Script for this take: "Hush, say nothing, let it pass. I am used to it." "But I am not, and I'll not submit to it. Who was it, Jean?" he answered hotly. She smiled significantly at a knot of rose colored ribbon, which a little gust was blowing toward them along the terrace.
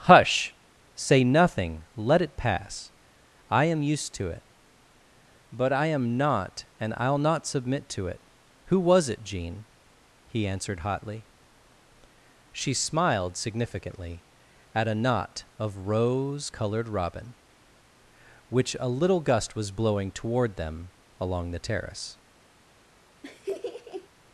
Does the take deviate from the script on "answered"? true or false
false